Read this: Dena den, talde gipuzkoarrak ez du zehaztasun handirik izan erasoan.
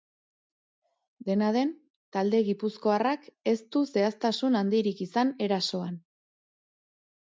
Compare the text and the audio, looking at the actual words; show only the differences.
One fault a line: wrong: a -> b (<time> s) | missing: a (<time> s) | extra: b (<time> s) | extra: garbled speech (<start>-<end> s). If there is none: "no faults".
no faults